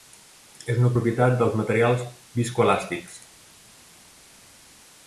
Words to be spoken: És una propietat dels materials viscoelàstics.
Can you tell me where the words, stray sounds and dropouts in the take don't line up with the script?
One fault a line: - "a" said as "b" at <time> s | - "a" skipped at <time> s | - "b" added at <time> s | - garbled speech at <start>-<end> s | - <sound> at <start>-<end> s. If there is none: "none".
none